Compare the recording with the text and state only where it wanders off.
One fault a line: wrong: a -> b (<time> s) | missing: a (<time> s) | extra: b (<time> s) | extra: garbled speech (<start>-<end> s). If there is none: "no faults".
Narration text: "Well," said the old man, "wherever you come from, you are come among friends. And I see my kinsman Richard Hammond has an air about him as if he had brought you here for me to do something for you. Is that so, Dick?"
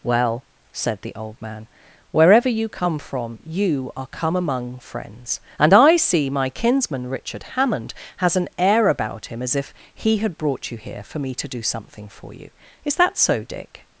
no faults